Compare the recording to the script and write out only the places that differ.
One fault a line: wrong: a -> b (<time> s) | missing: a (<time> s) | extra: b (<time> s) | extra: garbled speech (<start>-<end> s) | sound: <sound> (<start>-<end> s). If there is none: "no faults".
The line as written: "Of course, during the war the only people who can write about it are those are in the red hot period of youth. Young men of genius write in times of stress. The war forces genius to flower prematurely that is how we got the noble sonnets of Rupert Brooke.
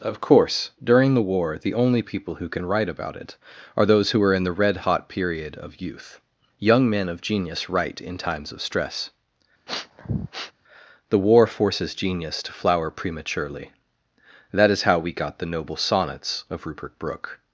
extra: who (4.1 s)
sound: sniff (9.7-10.5 s)